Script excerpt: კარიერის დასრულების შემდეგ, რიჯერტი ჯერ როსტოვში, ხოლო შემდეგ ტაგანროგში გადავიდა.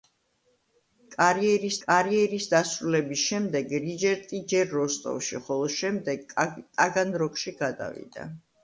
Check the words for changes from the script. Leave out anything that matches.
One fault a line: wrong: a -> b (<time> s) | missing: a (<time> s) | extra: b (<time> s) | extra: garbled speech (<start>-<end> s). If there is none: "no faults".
extra: კარიერის (1.8 s)